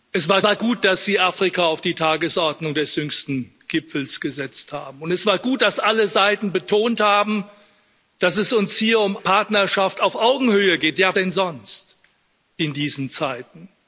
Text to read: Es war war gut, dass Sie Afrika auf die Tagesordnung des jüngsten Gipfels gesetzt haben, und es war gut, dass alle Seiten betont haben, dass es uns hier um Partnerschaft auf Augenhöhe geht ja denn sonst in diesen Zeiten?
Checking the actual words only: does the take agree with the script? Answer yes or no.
yes